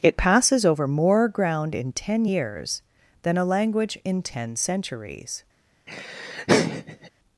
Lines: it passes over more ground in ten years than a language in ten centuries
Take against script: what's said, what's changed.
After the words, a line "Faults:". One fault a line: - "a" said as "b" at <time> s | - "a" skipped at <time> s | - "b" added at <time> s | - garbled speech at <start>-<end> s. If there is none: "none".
it passes over more ground in ten years than a language in ten centuries
Faults:
none